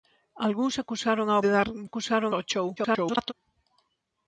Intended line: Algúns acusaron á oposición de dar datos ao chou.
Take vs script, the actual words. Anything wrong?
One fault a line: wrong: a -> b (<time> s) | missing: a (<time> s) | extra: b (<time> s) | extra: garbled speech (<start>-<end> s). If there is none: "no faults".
missing: oposición (1.4 s)
wrong: datos -> acusaron (1.9 s)
extra: garbled speech (2.8-3.3 s)